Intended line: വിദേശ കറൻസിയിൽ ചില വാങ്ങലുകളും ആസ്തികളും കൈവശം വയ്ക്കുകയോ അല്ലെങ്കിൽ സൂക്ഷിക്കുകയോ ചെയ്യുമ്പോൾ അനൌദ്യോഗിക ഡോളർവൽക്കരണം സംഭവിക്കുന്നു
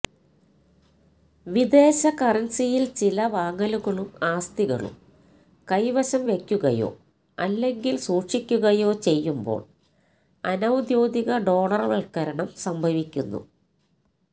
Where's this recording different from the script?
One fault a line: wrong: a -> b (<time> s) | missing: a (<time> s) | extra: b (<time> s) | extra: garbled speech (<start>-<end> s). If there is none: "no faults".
no faults